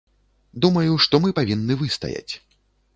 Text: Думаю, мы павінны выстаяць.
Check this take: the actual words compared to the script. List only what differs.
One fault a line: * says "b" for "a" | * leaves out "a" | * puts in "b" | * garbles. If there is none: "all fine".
* puts in "што"